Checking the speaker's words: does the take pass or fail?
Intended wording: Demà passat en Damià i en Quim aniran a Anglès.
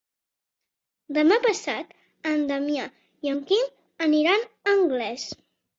pass